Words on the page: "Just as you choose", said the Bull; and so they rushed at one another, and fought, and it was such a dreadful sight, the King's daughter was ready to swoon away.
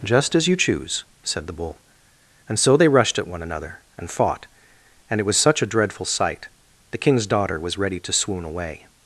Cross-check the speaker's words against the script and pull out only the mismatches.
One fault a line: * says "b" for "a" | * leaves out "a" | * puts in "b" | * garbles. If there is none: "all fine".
all fine